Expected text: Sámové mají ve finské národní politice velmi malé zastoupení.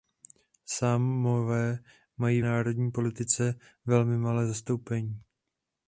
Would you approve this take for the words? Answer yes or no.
no